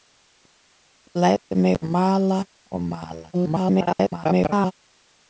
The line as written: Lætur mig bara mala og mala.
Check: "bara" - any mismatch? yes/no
yes